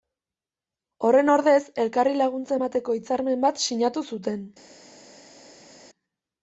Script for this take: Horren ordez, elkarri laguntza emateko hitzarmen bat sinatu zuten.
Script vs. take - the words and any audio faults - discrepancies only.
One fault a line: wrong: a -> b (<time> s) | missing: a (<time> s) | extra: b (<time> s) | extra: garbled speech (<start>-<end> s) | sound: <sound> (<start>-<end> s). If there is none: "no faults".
no faults